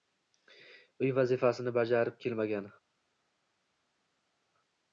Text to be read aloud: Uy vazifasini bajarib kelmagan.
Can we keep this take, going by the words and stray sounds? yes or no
yes